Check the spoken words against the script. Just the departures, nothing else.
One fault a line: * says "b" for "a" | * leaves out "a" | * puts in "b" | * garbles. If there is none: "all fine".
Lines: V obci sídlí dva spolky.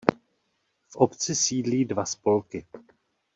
all fine